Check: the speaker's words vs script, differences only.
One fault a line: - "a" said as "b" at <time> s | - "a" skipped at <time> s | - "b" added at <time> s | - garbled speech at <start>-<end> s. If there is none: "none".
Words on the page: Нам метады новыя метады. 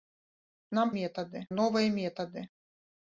none